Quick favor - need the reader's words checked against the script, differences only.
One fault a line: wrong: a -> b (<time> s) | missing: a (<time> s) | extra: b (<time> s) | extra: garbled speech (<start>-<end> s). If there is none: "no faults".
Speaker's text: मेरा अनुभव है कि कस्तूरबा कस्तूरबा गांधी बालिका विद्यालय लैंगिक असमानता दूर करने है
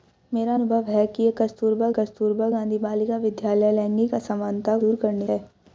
no faults